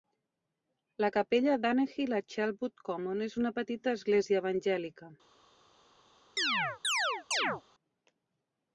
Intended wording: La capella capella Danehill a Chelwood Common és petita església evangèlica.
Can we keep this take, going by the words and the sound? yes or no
no